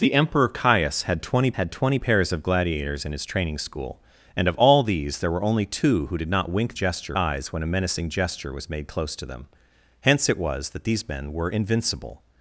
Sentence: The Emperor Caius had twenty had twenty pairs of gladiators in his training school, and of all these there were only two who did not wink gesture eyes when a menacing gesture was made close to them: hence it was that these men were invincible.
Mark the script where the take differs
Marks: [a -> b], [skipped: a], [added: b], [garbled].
The Emperor Caius had twenty had twenty pairs of gladiators in his training school, and of all these there were only two who did not wink gesture eyes when a menacing gesture was made close to them: hence it was that these men were invincible.